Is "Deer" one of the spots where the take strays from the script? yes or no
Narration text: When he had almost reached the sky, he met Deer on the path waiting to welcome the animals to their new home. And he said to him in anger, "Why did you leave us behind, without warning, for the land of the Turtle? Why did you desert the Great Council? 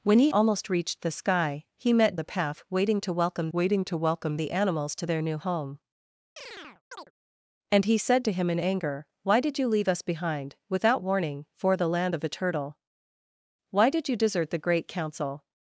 yes